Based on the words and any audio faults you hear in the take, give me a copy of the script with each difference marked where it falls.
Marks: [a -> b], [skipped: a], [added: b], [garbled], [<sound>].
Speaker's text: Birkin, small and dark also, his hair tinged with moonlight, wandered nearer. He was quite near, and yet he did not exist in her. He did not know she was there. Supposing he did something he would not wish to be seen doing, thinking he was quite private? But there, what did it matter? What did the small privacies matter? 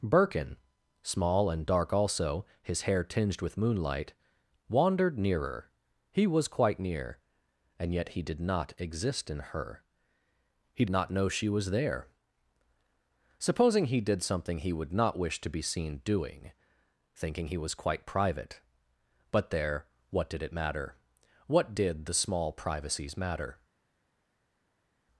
Birkin, small and dark also, his hair tinged with moonlight, wandered nearer. He was quite near, and yet he did not exist in her. He [skipped: did] not know she was there. Supposing he did something he would not wish to be seen doing, thinking he was quite private? But there, what did it matter? What did the small privacies matter?